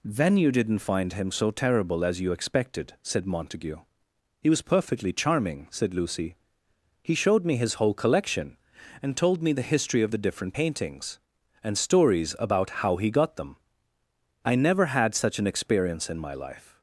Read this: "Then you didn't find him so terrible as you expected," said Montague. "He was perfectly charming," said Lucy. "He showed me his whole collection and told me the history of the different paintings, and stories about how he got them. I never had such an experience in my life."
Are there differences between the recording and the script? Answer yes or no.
no